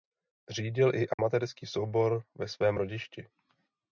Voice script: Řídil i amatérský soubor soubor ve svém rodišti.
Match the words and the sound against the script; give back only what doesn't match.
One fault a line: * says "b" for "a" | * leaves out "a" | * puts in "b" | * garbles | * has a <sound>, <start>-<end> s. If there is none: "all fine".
* has a dropout, 1.1-1.2 s
* leaves out "soubor"